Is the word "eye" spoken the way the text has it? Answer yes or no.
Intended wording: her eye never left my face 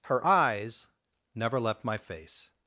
no